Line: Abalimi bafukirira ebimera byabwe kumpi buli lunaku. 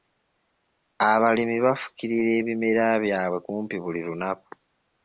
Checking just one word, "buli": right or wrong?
right